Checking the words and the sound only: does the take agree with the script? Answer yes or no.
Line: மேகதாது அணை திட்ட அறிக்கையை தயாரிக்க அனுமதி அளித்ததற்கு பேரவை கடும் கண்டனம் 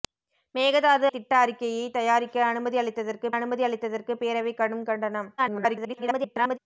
no